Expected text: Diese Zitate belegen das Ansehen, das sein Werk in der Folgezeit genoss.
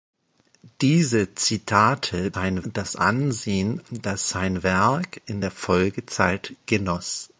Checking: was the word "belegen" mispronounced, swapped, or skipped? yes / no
yes